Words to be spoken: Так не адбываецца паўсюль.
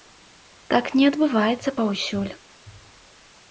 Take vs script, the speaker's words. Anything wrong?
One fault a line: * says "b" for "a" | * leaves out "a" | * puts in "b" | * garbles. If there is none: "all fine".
all fine